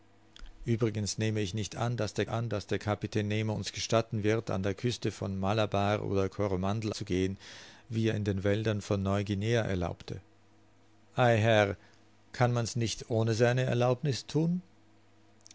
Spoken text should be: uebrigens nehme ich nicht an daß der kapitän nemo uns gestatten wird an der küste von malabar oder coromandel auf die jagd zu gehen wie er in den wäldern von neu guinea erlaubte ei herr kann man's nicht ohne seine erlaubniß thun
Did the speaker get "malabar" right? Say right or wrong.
right